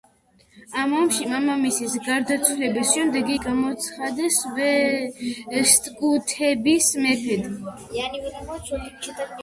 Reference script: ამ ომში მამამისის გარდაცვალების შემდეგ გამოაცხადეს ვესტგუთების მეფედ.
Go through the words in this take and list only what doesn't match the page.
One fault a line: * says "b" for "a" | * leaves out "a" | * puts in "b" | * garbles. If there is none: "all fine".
all fine